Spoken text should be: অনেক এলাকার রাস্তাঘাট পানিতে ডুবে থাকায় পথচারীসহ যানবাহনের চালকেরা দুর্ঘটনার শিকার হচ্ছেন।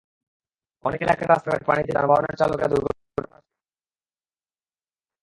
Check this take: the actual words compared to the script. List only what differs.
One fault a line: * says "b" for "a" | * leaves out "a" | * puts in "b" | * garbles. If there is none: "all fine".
* leaves out "ডুবে থাকায় পথচারীসহ"